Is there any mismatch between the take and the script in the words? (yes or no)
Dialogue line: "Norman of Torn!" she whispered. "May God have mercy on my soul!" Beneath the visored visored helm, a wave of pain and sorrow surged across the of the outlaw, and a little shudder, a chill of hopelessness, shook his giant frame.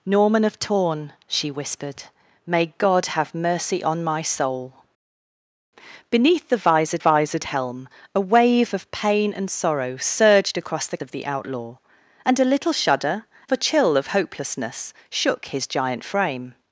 no